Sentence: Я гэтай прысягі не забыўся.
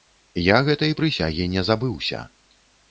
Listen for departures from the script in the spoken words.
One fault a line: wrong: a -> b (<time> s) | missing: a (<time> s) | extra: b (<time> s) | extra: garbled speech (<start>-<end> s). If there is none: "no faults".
no faults